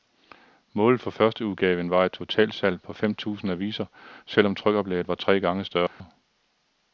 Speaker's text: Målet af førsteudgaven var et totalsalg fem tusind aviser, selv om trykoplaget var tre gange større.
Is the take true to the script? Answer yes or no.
no